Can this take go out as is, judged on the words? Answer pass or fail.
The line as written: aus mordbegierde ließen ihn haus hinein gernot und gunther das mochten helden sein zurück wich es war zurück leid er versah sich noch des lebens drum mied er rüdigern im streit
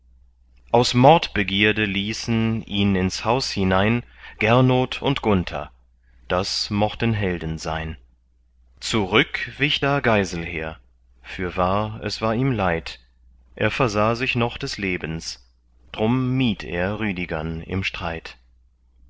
fail